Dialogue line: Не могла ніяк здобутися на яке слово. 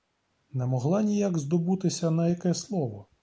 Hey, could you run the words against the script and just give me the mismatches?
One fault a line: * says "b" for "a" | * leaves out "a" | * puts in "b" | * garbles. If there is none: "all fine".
all fine